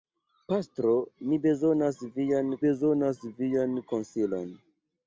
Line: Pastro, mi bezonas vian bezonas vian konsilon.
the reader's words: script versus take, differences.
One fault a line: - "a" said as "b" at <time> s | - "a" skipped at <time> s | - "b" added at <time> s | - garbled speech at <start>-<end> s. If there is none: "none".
none